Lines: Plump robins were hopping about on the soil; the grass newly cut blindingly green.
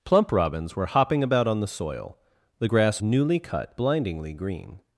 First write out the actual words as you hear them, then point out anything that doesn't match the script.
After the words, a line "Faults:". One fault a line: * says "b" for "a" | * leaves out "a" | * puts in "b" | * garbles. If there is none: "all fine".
Plump robins were hopping about on the soil; the grass newly cut blindingly green.
Faults:
all fine